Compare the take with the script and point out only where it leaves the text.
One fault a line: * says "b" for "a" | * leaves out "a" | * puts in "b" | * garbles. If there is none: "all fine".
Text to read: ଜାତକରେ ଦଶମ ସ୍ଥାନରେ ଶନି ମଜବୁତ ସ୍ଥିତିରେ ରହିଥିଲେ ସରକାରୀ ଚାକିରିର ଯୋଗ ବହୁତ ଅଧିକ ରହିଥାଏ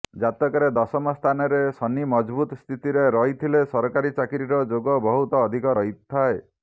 all fine